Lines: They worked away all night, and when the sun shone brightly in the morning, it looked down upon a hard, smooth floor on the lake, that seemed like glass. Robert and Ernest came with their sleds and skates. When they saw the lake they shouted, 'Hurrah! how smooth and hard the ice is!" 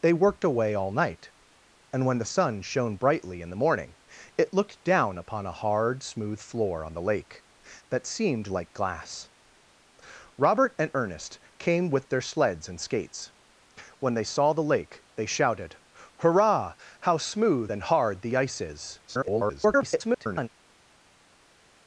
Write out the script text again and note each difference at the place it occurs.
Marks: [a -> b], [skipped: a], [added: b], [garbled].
They worked away all night, and when the sun shone brightly in the morning, it looked down upon a hard, smooth floor on the lake, that seemed like glass. Robert and Ernest came with their sleds and skates. When they saw the lake they shouted, 'Hurrah! how smooth and hard the ice is!" [garbled]